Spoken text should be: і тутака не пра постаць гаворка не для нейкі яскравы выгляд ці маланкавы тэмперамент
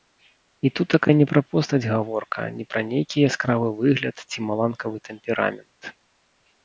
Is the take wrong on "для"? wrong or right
wrong